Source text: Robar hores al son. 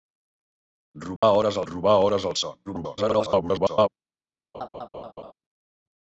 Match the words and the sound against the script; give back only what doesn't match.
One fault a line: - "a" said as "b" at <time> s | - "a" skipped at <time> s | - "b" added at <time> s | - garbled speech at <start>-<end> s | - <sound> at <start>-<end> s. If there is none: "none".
- dropout at 1.2-1.2 s
- "robar hores" added at 1.7 s
- garbled speech at 2.7-3.9 s
- laugh at 4.5-5.3 s